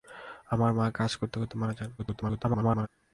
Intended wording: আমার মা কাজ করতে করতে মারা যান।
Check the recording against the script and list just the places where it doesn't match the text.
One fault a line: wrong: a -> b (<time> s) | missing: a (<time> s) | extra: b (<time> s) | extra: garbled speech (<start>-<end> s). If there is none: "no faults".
extra: garbled speech (2.0-2.9 s)